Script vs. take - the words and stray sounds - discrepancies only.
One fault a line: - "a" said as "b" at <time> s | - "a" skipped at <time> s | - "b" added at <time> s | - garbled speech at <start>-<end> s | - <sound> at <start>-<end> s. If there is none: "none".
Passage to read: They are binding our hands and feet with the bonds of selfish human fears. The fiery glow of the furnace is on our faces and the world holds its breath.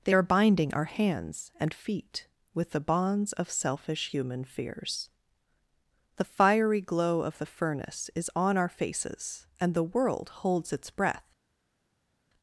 none